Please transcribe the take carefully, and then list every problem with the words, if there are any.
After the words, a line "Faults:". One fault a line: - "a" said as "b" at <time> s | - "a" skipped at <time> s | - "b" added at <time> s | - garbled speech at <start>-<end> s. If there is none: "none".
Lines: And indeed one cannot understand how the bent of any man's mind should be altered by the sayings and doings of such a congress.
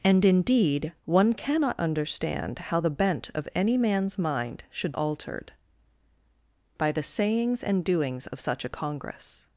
And indeed one cannot understand how the bent of any man's mind should altered by the sayings and doings of such a congress.
Faults:
- "be" skipped at 4.9 s